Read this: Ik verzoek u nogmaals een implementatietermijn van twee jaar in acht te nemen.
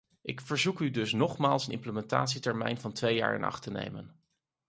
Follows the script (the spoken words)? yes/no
no